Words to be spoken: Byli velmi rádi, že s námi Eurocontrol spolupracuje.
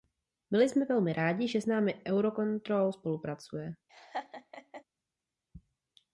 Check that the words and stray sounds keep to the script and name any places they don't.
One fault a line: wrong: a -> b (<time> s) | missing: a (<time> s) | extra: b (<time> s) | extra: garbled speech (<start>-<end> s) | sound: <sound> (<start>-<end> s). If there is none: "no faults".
extra: jsme (0.7 s)
sound: laugh (3.9-4.8 s)